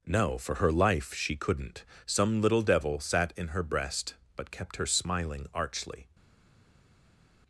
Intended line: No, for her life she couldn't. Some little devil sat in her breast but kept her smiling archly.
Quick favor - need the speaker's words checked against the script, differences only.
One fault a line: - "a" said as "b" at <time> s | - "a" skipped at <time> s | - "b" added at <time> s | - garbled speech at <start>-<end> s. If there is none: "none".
none